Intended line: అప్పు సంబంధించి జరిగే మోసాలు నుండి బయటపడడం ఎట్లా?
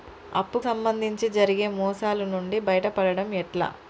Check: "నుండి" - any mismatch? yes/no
no